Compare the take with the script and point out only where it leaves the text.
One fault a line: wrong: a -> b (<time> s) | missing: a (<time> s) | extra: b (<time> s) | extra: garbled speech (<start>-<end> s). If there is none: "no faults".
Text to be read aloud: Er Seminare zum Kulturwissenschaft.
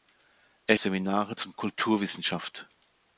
no faults